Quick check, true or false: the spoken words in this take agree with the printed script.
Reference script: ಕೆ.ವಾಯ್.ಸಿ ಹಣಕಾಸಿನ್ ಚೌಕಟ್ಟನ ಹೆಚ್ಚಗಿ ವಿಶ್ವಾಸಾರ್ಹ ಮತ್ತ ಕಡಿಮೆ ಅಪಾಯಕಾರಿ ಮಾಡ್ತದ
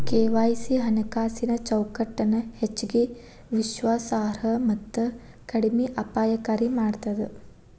true